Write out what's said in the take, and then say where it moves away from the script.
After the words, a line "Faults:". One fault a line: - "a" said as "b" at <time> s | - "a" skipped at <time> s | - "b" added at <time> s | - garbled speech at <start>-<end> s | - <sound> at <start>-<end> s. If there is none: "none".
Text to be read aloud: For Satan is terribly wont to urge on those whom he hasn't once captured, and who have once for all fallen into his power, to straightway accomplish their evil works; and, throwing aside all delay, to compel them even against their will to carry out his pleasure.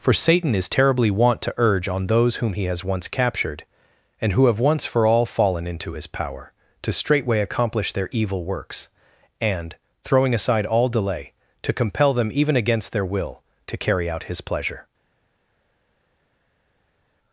For Satan is terribly wont to urge on those whom he has once captured, and who have once for all fallen into his power, to straightway accomplish their evil works; and, throwing aside all delay, to compel them even against their will to carry out his pleasure.
Faults:
- "hasn't" said as "has" at 2.6 s